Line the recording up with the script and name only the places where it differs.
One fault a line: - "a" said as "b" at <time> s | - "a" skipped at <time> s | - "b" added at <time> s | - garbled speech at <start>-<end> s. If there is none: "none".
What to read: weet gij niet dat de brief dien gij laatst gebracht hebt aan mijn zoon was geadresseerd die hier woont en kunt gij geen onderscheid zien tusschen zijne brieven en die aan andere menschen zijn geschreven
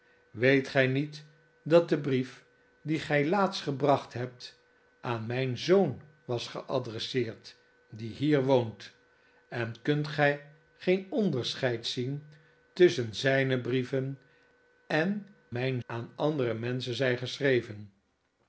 - "die" said as "mijn" at 15.5 s